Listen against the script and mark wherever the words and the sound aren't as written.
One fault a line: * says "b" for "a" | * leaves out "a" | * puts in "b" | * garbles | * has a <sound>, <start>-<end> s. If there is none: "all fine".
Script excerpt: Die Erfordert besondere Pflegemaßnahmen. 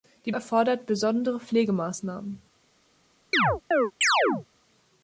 * has a chirp, 3.3-4.5 s